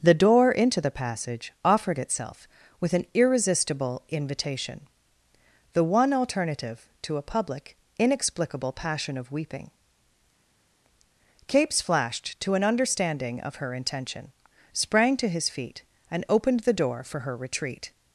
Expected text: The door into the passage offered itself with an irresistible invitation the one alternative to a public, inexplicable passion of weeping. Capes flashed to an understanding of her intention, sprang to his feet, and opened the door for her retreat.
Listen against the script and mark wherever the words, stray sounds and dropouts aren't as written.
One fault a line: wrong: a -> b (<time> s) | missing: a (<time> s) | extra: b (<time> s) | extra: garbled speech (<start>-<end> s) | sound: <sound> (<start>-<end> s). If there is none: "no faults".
no faults